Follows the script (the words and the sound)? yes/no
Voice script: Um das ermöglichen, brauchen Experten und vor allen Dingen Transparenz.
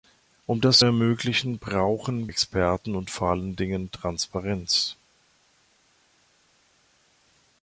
yes